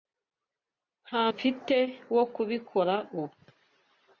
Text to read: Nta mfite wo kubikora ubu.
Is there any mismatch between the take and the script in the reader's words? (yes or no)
no